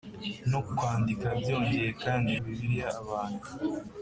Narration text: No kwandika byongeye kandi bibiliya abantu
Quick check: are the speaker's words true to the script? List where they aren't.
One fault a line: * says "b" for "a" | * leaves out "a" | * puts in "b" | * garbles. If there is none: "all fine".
all fine